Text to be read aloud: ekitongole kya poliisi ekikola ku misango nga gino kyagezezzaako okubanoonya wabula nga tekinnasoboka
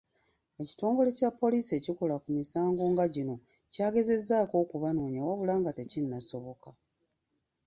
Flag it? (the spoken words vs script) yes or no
no